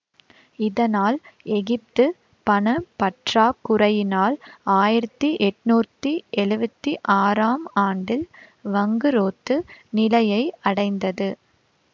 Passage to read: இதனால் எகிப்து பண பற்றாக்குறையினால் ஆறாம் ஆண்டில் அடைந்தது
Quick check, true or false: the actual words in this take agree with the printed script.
false